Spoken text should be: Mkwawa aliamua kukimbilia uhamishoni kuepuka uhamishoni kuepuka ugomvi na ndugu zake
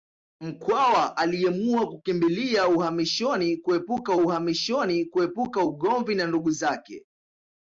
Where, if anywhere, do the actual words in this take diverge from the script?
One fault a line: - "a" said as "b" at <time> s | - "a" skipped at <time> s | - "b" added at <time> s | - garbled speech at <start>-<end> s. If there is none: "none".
none